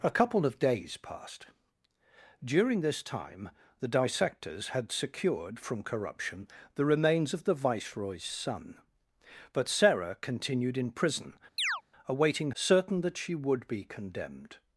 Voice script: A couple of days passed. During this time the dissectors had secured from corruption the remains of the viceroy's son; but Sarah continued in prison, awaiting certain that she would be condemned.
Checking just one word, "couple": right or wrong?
right